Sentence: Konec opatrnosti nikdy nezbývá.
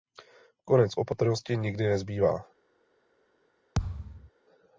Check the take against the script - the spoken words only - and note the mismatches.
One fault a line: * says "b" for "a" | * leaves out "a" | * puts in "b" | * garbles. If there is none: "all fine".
all fine